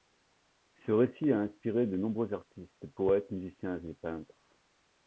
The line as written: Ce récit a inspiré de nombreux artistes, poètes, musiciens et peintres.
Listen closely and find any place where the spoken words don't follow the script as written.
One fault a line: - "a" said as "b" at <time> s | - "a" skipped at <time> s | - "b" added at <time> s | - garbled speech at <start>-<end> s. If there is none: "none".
none